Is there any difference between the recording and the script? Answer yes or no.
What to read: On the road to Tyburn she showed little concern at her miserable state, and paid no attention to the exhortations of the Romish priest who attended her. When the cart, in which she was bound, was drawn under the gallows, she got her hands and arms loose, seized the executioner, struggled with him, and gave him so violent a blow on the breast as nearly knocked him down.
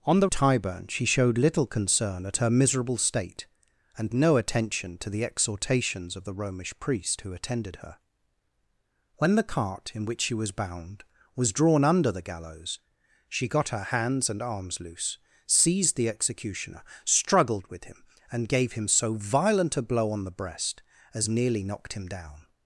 yes